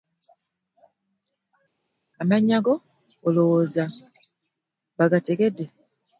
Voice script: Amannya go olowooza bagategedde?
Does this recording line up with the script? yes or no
yes